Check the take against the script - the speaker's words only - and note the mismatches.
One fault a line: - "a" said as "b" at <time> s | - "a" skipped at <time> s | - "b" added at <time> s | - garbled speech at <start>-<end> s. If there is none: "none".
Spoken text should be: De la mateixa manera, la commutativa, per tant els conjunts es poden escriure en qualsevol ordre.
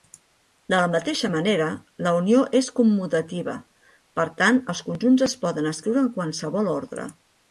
- "unió és" added at 2.2 s